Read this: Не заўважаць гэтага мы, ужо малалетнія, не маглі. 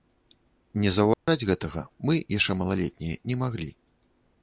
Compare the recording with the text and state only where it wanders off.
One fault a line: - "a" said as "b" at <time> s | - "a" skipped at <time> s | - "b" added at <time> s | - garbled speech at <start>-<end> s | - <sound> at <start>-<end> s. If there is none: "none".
- dropout at 1.1-1.3 s
- "ужо" said as "яшчэ" at 2.4 s